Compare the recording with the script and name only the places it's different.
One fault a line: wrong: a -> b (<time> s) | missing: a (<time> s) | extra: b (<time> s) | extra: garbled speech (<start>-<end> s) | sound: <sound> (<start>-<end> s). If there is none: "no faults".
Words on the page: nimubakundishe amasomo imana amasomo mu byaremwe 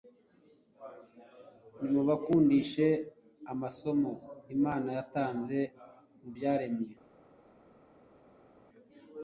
wrong: amasomo -> yatanze (5.0 s)